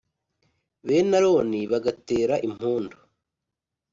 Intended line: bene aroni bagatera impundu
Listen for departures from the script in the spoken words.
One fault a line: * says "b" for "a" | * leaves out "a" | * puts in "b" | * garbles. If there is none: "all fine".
all fine